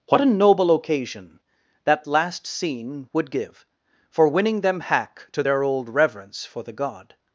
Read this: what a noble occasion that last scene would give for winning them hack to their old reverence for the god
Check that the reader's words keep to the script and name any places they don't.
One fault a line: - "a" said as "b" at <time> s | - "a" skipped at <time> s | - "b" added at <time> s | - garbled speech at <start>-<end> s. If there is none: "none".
none